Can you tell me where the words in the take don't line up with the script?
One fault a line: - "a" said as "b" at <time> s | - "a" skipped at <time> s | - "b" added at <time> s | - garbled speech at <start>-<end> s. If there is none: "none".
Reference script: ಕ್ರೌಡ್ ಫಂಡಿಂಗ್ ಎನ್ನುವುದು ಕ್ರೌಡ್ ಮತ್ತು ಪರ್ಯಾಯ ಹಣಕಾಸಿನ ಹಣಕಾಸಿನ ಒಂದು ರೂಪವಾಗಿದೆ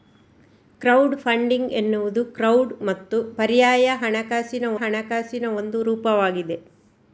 none